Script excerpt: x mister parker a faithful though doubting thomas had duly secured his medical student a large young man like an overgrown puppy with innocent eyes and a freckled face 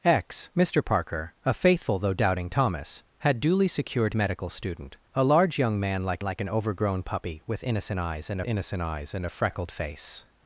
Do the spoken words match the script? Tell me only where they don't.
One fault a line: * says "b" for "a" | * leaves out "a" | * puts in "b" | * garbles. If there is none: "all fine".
* leaves out "his"
* puts in "like"
* puts in "innocent eyes and"